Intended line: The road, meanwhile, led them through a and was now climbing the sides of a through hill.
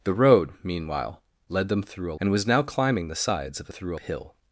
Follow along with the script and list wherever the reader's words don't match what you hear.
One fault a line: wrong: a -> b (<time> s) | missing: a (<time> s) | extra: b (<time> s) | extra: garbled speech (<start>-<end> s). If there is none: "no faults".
no faults